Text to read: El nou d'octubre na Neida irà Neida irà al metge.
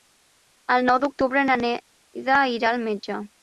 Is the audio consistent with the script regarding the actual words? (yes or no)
no